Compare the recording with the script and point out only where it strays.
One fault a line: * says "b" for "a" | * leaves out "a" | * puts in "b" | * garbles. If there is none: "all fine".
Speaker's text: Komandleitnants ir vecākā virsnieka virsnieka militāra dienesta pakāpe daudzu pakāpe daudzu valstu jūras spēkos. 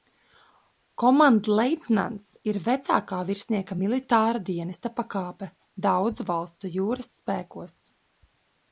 * leaves out "virsnieka"
* leaves out "pakāpe daudzu"